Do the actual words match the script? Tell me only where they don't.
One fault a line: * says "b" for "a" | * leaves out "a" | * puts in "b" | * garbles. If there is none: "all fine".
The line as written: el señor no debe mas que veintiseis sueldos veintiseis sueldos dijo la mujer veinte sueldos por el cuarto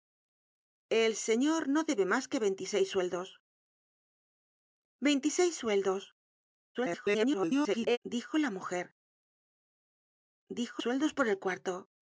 * garbles
* says "dijo" for "veinte"